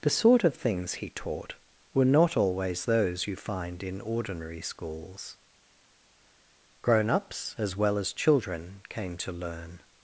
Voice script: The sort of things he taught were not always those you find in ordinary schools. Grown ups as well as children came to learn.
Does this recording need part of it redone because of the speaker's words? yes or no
no